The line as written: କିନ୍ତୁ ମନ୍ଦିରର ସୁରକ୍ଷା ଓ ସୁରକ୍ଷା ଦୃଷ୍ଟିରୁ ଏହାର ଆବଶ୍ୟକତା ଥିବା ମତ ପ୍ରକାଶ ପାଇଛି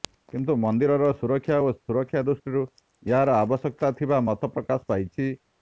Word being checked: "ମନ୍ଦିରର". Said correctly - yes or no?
yes